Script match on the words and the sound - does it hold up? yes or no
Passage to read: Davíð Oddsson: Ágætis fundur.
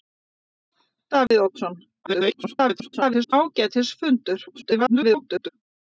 no